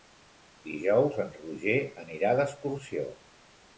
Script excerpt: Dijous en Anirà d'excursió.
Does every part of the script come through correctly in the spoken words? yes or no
no